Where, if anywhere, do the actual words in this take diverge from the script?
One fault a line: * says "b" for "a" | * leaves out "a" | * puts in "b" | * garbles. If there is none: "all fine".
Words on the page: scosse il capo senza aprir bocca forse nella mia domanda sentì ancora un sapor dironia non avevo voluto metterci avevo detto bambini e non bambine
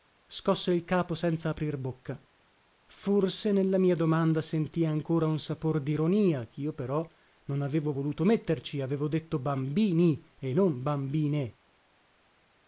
* puts in "chio però"